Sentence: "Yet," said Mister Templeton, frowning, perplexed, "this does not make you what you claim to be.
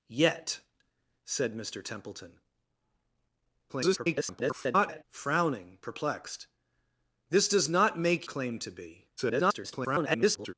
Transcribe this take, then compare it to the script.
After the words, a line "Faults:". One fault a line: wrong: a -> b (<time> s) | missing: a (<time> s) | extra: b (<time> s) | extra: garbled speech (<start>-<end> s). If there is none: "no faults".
"Yet," said Mister Templeton, [garbled] frowning, perplexed, "this does not make claim to be. [garbled]
Faults:
extra: garbled speech (3.7-5.0 s)
missing: you what you (8.3 s)
extra: garbled speech (9.2-10.5 s)